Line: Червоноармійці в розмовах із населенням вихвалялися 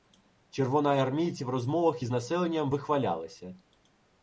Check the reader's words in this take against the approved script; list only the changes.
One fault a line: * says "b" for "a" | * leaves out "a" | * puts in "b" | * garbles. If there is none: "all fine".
all fine